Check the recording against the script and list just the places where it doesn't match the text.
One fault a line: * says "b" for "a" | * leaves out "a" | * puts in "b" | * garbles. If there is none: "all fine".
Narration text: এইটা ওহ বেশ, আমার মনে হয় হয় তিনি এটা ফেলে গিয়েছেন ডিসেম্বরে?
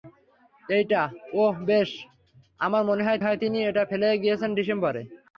all fine